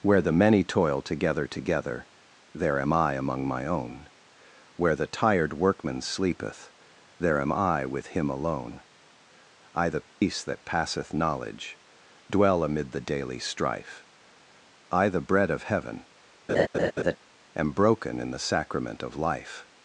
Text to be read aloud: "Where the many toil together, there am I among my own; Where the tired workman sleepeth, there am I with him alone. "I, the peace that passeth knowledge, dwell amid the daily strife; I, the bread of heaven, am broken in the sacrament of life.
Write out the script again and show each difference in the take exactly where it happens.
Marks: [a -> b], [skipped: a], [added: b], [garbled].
"Where the many toil together, [added: together] there am I among my own; Where the tired workman sleepeth, there am I with him alone. "I, the peace that passeth knowledge, dwell amid the daily strife; I, the bread of heaven, am broken in the sacrament of life.